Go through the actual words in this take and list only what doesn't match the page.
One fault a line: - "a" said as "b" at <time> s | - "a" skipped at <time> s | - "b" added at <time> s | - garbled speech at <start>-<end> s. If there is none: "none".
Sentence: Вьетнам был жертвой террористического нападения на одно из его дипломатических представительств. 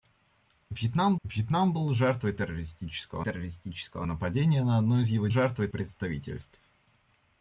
- "вьетнам" added at 1.2 s
- "террористического" added at 3.2 s
- "дипломатических" said as "жертвой" at 5.3 s